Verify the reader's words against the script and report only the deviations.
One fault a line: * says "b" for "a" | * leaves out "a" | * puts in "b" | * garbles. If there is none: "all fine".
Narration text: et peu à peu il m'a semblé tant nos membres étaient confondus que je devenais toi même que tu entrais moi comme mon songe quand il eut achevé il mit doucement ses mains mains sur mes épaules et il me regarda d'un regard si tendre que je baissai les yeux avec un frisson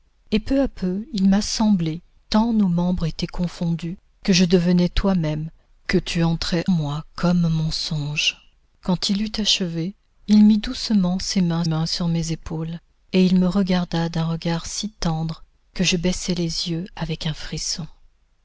all fine